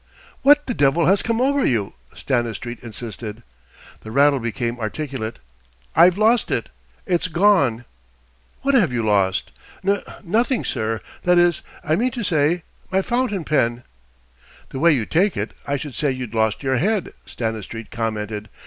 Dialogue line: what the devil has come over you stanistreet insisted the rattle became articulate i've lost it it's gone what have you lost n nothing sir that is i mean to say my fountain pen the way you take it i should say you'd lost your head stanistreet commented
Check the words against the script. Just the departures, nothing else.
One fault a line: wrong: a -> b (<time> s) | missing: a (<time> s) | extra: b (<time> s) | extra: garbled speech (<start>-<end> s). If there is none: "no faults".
no faults